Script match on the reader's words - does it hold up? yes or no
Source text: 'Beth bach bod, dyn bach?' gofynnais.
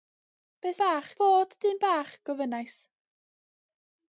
yes